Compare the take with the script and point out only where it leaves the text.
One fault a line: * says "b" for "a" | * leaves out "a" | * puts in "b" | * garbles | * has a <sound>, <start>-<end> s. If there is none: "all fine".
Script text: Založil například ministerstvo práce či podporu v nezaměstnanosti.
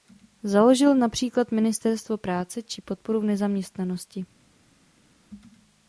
all fine